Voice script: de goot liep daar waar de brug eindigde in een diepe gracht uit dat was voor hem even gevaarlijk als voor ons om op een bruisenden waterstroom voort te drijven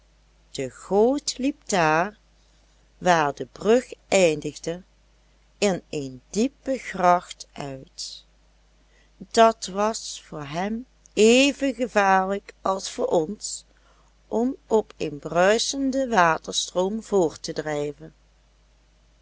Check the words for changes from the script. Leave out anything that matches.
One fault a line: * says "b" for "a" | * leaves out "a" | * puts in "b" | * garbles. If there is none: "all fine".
all fine